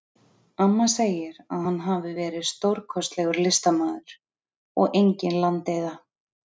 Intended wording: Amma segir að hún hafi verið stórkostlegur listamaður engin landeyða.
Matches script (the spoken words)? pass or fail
fail